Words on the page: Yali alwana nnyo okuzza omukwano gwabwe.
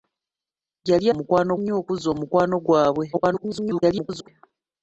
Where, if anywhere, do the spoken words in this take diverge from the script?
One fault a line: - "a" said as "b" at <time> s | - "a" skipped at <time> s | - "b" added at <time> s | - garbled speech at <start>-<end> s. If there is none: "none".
- "alwana" said as "omukwano" at 1.1 s
- garbled speech at 3.1-4.3 s